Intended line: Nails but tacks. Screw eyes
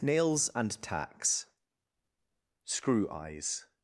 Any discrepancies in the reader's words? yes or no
yes